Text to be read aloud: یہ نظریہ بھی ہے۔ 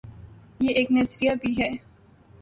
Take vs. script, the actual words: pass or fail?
fail